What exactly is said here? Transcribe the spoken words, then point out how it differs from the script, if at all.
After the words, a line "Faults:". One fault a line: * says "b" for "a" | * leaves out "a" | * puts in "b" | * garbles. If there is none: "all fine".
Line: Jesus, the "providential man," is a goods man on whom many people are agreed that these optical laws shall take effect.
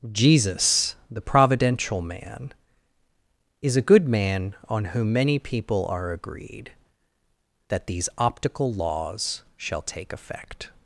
Jesus, the "providential man," is a good man on whom many people are agreed that these optical laws shall take effect.
Faults:
* says "good" for "goods"